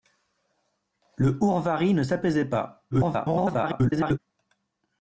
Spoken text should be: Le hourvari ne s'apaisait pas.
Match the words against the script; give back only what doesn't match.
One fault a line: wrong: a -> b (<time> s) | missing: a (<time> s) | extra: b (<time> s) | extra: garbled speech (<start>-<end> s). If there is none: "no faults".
extra: garbled speech (2.9-4.2 s)